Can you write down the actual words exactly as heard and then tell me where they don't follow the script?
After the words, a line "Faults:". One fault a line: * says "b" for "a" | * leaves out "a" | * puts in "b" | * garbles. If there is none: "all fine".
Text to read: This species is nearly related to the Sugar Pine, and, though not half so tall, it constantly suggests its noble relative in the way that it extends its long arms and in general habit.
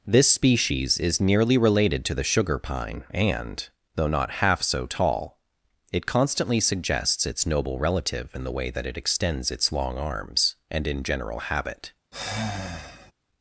This species is nearly related to the Sugar Pine, and, though not half so tall, it constantly suggests its noble relative in the way that it extends its long arms and in general habit.
Faults:
all fine